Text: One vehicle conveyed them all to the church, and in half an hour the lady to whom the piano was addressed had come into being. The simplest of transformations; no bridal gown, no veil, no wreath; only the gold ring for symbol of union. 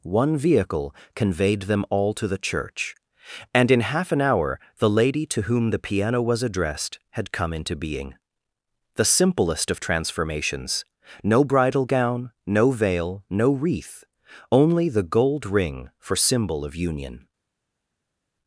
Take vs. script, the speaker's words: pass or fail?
pass